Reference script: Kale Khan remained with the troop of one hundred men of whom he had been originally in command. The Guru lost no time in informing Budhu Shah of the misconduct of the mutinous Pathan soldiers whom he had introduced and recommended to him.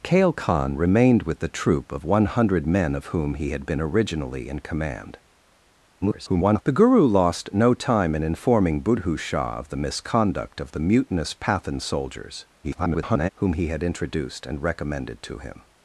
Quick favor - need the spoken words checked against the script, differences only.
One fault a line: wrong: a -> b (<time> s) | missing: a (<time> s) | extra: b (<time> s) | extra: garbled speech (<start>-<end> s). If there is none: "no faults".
extra: garbled speech (6.0-6.6 s)
extra: garbled speech (12.6-13.3 s)